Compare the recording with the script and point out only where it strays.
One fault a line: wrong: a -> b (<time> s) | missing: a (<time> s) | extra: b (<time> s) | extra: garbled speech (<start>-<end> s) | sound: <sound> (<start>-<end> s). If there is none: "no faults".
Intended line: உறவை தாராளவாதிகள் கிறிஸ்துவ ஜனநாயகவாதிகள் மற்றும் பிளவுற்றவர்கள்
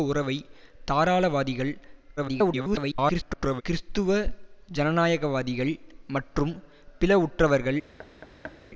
extra: garbled speech (2.2-3.6 s)
sound: thud (8.0-8.6 s)